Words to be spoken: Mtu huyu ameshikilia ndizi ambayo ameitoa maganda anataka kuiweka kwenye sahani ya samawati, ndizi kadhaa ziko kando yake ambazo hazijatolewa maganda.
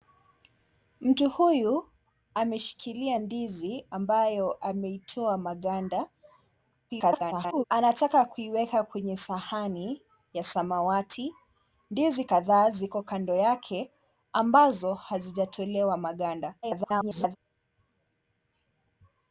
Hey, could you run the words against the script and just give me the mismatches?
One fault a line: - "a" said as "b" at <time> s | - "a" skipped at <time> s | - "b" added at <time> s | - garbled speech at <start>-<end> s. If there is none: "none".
- garbled speech at 6.9-7.6 s
- garbled speech at 16.6-17.4 s